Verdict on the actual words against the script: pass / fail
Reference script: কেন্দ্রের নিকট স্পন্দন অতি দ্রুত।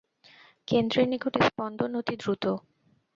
pass